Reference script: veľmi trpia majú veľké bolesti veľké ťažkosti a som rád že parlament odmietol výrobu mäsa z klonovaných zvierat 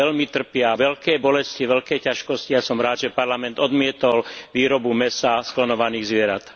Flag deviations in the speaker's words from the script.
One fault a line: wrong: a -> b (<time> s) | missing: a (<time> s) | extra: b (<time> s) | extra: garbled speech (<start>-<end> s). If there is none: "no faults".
missing: majú (0.7 s)